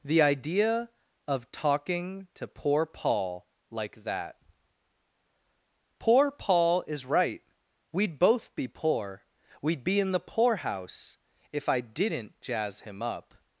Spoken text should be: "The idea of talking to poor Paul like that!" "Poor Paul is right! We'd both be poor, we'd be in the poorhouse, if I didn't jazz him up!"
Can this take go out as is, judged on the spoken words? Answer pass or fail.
pass